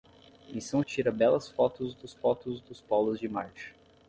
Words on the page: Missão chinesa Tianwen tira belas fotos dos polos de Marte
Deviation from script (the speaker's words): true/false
true